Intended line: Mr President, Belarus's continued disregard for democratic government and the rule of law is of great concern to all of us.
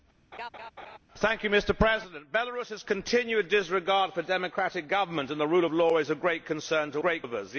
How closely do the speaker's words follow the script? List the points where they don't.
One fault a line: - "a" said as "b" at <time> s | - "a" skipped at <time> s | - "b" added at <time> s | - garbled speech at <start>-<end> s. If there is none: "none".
- "all" said as "great" at 7.0 s